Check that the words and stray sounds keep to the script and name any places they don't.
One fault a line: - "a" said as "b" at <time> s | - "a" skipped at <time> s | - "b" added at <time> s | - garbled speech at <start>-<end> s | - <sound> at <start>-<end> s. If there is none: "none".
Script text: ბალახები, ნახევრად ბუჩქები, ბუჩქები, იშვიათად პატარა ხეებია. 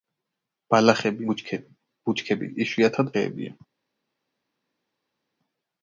- "ნახევრად" skipped at 1.3 s
- "პატარა" skipped at 3.2 s